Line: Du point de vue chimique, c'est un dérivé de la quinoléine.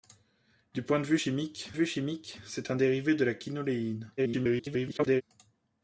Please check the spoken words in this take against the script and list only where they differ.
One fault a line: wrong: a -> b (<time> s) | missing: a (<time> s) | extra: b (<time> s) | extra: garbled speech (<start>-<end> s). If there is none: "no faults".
extra: vue chimique (1.7 s)
extra: garbled speech (4.2-5.2 s)